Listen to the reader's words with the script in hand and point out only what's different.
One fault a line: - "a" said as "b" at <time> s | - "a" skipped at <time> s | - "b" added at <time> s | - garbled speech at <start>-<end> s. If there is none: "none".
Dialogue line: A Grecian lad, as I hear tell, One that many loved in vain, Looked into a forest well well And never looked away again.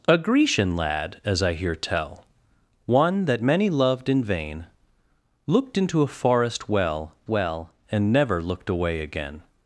none